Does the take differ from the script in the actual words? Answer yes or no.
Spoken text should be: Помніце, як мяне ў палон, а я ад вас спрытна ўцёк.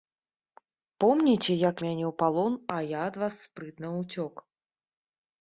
no